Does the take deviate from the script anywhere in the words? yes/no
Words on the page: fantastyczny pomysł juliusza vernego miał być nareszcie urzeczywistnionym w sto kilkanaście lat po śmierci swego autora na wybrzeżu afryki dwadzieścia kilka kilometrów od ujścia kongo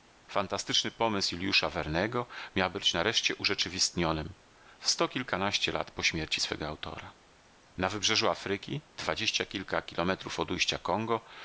no